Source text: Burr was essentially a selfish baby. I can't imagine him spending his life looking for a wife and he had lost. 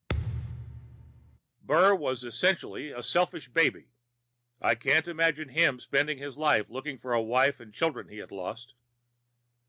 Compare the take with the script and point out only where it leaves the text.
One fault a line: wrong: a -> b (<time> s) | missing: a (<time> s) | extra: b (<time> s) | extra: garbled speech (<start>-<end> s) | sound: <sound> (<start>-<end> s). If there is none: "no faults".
sound: thud (0.1-1.4 s)
extra: children (7.7 s)